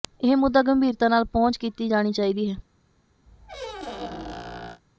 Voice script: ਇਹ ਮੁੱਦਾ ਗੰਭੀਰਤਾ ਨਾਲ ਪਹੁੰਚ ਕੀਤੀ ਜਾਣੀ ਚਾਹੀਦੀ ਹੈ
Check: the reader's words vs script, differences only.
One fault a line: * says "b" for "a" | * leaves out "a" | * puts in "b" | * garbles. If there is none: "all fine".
all fine